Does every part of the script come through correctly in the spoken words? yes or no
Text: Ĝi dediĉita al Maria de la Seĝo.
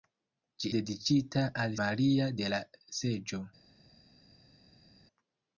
yes